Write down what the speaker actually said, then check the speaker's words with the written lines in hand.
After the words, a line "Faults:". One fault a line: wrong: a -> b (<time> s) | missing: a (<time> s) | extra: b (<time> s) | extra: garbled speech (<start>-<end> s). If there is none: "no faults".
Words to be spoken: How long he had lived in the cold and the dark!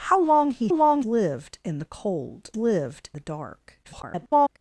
How long he long lived in the cold lived the dark! [garbled]
Faults:
wrong: had -> long (0.7 s)
wrong: and -> lived (2.6 s)
extra: garbled speech (3.8-4.6 s)